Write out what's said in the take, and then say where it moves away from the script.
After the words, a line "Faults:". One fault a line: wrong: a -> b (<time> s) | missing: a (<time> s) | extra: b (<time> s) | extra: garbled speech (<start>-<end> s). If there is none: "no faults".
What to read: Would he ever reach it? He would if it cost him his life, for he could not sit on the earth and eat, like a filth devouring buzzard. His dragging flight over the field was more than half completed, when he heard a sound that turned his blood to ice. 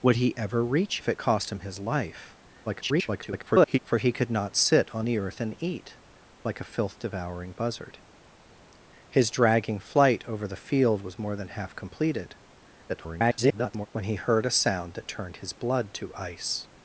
Would he ever reach if it cost him his life, [garbled] for he could not sit on the earth and eat, like a filth devouring buzzard. His dragging flight over the field was more than half completed, [garbled] when he heard a sound that turned his blood to ice.
Faults:
missing: it He would (1.0 s)
extra: garbled speech (2.6-3.8 s)
extra: garbled speech (12.9-13.9 s)